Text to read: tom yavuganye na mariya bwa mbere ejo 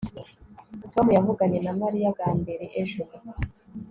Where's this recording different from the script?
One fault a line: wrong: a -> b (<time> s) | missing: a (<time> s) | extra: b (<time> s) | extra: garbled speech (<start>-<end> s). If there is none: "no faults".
no faults